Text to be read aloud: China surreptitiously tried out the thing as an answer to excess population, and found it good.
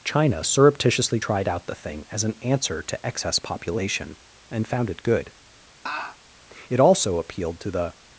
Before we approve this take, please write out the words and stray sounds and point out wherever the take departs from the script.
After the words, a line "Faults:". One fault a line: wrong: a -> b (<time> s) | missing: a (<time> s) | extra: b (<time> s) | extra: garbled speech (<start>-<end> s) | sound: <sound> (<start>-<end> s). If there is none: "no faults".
China surreptitiously tried out the thing as an answer to excess population, and found it good. It also appealed to the
Faults:
sound: laugh (5.9-6.2 s)
extra: It also appealed to the (6.7 s)